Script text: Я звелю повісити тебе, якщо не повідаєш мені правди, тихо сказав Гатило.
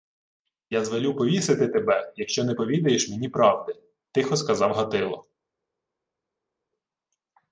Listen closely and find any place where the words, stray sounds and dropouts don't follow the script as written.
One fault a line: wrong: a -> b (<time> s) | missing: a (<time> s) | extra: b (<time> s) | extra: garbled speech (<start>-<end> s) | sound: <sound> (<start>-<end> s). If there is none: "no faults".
no faults